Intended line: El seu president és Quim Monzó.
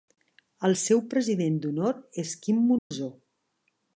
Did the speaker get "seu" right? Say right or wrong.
right